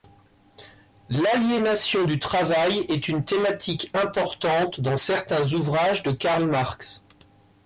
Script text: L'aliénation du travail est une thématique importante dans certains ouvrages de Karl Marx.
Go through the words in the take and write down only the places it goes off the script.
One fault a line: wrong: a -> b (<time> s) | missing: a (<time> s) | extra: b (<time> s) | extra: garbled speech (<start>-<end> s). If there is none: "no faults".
no faults